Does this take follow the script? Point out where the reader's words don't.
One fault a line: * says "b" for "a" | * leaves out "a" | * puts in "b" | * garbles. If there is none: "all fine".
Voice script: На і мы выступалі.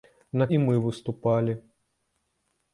all fine